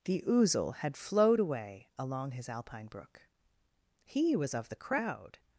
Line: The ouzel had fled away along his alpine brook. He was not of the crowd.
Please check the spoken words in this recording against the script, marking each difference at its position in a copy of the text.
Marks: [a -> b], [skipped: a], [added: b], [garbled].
The ouzel had [fled -> flowed] away along his alpine brook. He was [skipped: not] of the crowd.